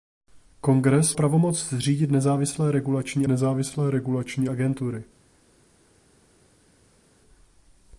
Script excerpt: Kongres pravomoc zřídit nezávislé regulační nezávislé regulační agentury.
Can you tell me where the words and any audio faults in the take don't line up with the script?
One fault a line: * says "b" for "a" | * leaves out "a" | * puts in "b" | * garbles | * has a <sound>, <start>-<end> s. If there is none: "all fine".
all fine